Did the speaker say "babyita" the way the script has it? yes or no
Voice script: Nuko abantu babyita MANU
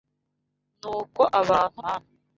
no